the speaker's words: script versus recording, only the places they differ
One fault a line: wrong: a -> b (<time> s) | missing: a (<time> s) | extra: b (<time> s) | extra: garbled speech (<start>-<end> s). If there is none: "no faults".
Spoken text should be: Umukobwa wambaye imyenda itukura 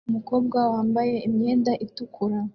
no faults